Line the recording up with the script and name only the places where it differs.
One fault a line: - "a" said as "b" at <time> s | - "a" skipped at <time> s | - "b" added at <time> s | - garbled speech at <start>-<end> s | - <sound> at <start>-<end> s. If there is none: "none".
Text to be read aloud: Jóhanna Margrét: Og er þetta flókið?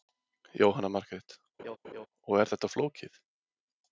- laugh at 1.6-2.1 s